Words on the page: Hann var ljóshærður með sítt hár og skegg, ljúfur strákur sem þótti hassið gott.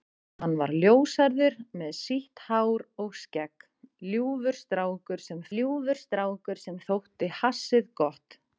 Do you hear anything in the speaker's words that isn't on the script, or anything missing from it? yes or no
yes